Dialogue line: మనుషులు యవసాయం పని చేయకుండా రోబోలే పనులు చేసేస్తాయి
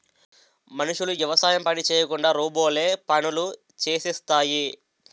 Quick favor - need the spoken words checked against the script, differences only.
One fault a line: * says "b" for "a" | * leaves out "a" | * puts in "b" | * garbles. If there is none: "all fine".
all fine